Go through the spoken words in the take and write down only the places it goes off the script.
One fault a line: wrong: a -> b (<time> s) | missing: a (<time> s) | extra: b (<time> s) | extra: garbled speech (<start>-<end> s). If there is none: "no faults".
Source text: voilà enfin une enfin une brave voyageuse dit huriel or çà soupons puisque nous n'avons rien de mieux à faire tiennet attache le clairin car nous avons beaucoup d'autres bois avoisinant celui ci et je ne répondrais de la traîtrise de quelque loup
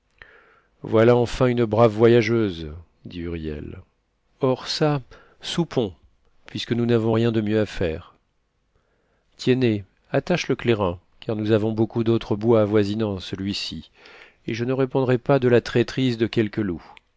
missing: enfin une (1.6 s)
extra: pas (15.2 s)